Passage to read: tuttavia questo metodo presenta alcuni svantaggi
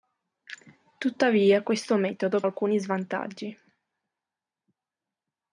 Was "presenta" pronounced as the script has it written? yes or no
no